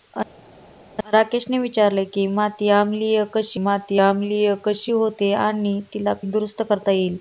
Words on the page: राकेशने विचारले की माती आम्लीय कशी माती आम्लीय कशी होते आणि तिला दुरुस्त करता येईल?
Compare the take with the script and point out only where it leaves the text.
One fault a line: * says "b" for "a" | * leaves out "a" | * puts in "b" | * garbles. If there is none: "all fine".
all fine